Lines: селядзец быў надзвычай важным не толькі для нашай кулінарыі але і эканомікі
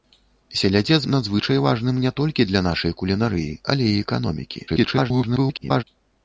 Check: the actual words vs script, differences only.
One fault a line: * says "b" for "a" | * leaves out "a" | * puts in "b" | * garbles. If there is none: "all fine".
* leaves out "быў"
* garbles